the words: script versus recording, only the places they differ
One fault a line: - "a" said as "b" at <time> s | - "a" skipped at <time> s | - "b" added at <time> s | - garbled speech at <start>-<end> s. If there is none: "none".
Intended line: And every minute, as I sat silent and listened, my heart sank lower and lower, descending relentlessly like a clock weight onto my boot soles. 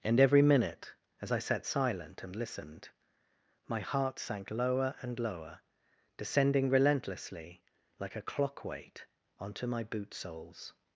none